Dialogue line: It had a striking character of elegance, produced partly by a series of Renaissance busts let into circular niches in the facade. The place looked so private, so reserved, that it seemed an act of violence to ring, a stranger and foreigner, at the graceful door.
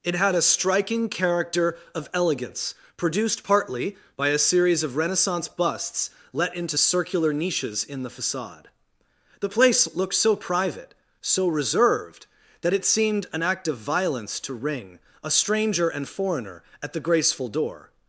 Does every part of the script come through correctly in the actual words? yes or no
yes